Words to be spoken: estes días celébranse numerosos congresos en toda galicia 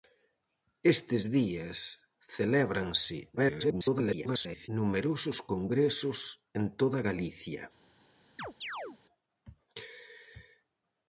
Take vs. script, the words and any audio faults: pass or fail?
fail